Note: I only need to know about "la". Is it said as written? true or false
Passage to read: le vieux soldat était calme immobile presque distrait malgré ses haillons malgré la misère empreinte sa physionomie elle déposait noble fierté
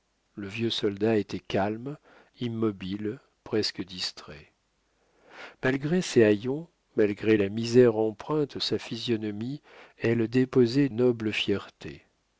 true